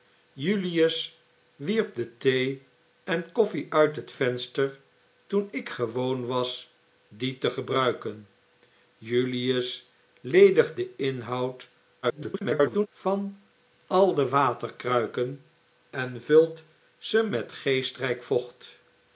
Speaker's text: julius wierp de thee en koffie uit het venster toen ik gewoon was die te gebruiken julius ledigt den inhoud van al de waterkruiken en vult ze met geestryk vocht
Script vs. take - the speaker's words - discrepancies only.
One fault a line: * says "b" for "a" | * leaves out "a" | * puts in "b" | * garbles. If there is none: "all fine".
* garbles